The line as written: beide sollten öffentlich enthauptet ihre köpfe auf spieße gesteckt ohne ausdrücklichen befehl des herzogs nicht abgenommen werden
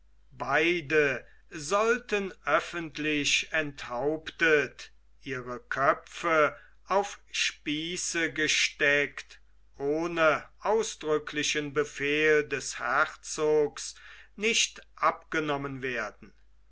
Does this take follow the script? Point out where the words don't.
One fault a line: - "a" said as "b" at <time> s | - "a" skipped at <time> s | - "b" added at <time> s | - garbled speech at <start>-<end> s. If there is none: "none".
none